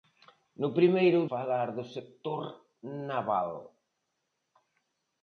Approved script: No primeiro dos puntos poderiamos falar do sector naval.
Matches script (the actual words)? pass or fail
fail